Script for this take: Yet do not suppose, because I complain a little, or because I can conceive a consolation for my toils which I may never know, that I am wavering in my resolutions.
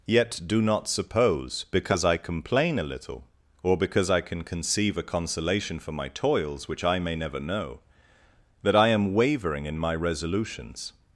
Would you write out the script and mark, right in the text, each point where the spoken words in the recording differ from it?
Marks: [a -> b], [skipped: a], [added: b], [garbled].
Yet do not suppose, because I complain a little, or because I can conceive a consolation for my toils which I may never know, that I am wavering in my resolutions.